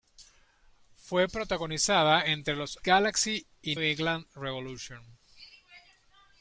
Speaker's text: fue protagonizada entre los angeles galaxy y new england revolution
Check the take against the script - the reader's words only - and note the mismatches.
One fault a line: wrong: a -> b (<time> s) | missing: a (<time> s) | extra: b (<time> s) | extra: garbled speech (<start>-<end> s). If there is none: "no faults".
missing: angeles (2.8 s)
missing: new (3.8 s)